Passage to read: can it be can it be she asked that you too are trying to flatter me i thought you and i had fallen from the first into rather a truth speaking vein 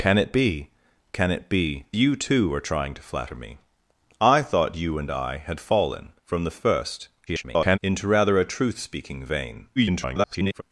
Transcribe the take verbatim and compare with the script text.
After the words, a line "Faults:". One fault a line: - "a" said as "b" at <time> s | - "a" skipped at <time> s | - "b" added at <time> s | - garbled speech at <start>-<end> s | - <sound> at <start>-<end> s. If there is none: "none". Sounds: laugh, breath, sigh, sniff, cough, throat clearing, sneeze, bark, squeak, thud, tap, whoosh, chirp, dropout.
can it be can it be you too are trying to flatter me i thought you and i had fallen from the first [garbled] into rather a truth speaking vein [garbled]
Faults:
- "she asked that" skipped at 1.9 s
- garbled speech at 7.3-7.8 s
- garbled speech at 9.8-10.6 s